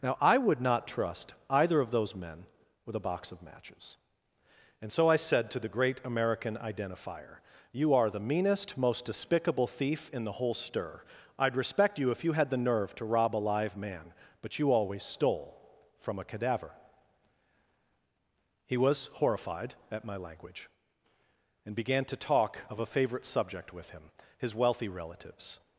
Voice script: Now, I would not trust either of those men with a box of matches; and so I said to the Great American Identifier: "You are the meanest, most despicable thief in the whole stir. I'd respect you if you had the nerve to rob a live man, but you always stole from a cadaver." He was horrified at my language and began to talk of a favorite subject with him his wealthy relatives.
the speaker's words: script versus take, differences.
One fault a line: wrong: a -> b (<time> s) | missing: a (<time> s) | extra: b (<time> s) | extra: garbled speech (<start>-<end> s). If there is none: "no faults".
no faults